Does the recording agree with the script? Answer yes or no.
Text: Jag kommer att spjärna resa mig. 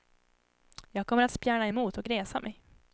no